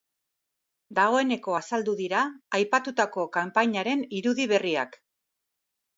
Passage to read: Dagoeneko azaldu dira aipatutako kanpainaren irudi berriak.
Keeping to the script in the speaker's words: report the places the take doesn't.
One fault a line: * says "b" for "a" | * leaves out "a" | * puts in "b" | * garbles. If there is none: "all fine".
all fine